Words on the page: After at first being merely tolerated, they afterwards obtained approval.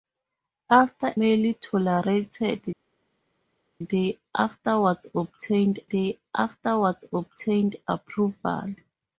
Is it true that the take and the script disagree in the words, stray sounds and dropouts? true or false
true